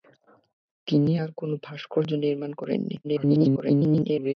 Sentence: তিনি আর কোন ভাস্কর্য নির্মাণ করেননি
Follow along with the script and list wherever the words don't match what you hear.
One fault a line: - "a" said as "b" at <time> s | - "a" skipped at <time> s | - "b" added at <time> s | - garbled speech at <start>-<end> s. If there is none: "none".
- garbled speech at 3.0-4.3 s